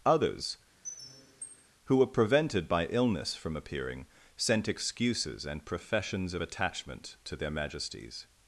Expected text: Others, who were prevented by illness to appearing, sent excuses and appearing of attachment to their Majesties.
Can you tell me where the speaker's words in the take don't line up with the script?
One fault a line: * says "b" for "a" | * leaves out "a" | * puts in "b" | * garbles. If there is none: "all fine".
* says "from" for "to"
* says "professions" for "appearing"